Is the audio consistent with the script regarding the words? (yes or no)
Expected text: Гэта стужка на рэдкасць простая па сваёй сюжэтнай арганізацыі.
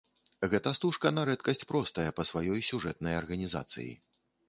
yes